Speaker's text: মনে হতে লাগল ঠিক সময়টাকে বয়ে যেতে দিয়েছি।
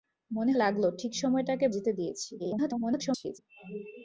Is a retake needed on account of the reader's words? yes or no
yes